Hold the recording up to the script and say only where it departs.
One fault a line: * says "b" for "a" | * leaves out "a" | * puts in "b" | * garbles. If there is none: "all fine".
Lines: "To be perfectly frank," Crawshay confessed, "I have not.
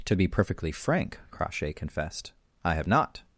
all fine